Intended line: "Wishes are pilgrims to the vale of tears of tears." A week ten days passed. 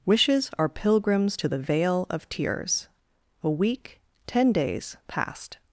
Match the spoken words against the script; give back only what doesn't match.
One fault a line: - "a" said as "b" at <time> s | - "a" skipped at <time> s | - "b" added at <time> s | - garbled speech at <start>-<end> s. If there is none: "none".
- "of tears" skipped at 2.9 s